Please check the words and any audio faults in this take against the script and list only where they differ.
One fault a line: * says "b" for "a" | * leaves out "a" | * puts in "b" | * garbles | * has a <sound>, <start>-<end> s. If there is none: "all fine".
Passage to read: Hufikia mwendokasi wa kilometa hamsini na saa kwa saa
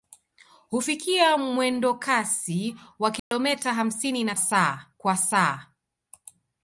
* has a dropout, 3.2-3.3 s